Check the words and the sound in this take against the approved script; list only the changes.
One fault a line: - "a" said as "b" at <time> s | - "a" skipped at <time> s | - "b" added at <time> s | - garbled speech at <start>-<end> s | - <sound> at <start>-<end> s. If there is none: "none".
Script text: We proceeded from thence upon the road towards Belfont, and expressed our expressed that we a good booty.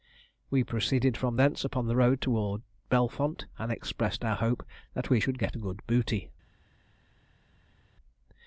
- "expressed" said as "hope" at 4.4 s
- "should get" added at 5.2 s